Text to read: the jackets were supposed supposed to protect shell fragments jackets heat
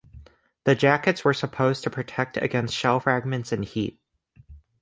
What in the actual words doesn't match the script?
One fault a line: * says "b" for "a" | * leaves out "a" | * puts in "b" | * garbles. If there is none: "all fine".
* leaves out "supposed"
* puts in "against"
* says "and" for "jackets"